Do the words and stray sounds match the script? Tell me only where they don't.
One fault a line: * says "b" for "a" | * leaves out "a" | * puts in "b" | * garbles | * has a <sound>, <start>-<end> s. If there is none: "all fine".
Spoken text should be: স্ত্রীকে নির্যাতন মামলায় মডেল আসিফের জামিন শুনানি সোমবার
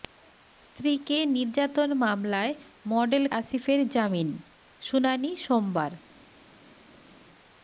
all fine